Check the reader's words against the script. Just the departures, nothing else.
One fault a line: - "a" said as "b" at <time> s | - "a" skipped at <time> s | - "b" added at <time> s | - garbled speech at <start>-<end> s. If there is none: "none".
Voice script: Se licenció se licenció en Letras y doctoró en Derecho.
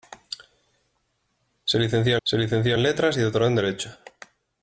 none